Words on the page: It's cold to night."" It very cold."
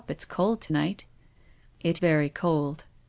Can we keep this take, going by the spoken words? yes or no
yes